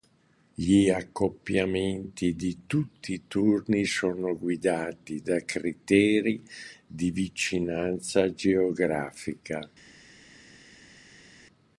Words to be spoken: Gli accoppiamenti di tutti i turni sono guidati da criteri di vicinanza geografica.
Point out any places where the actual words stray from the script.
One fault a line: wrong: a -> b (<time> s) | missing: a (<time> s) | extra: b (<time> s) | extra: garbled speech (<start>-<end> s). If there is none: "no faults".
no faults